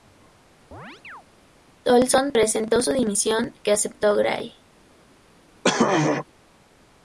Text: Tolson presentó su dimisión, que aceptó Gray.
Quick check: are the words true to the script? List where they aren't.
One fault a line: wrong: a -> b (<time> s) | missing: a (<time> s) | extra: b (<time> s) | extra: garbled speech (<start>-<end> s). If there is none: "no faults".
no faults